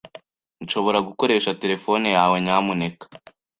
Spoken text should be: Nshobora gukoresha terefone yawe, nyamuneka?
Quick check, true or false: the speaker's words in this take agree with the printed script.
true